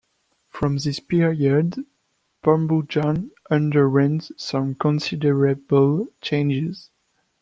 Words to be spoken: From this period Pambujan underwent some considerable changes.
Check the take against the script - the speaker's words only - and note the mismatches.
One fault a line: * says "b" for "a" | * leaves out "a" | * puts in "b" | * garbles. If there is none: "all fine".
all fine